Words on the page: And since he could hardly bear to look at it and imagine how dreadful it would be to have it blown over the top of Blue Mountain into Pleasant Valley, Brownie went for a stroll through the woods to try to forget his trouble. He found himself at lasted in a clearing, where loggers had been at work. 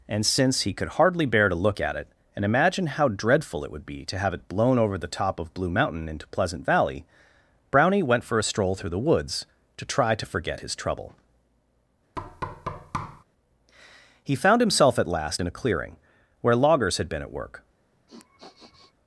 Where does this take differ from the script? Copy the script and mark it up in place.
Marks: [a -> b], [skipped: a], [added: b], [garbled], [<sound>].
And since he could hardly bear to look at it and imagine how dreadful it would be to have it blown over the top of Blue Mountain into Pleasant Valley, Brownie went for a stroll through the woods to try to forget his trouble. [thud] He found himself at [lasted -> last] in a clearing, where loggers had been at work. [sniff]